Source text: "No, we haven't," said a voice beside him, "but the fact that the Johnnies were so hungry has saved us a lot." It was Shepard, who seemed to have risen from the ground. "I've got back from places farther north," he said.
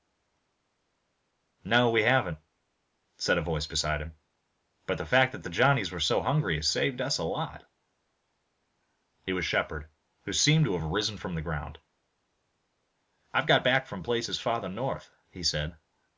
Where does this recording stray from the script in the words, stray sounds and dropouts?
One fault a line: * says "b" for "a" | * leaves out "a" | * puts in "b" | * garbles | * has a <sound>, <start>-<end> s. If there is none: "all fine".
all fine